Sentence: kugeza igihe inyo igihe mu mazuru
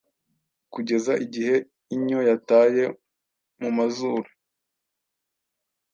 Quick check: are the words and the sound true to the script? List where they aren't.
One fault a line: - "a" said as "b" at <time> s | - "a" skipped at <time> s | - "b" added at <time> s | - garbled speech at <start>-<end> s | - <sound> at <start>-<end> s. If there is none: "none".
- "igihe" said as "yataye" at 2.3 s